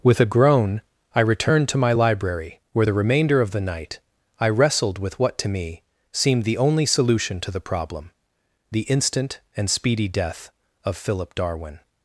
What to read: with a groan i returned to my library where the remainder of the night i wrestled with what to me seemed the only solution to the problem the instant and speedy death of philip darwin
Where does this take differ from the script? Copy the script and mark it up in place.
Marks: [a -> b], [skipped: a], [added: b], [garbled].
with a groan i returned to my library where the remainder of the night i wrestled with what to me seemed the only solution to the problem the instant and speedy death of philip darwin